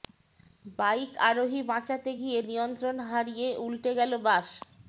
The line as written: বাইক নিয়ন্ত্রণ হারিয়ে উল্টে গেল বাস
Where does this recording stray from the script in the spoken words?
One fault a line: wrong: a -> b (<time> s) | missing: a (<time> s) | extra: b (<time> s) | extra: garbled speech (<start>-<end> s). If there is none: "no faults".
extra: আরোহী বাঁচাতে গিয়ে (1.3 s)